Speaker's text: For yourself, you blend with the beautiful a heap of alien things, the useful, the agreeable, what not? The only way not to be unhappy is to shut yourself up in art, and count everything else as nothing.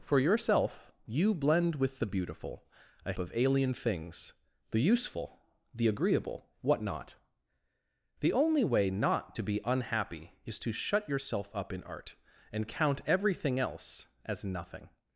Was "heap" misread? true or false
true